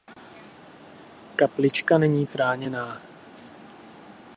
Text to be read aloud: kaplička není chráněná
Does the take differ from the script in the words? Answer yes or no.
no